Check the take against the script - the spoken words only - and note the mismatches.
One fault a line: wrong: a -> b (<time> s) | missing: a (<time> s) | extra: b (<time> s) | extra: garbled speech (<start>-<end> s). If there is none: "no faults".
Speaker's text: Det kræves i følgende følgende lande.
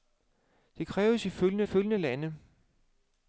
no faults